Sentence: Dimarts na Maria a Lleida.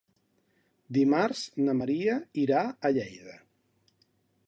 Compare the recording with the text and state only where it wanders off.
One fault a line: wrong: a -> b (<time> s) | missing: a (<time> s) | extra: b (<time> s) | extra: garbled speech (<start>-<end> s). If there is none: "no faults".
extra: irà (2.4 s)